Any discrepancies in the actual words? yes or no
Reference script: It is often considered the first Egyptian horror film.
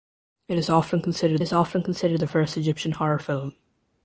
yes